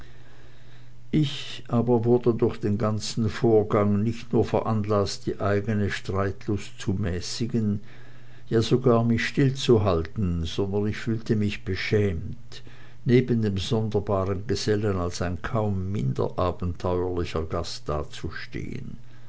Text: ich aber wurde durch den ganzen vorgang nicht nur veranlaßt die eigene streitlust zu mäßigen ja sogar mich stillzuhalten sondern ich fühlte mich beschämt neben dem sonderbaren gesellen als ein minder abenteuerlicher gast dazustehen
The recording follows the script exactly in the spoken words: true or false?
false